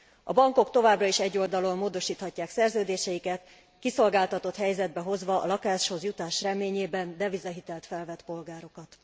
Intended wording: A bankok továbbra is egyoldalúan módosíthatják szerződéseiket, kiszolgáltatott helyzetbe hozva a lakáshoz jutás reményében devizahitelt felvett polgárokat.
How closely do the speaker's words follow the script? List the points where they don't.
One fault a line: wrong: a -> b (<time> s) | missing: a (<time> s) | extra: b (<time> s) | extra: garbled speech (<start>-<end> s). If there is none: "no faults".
no faults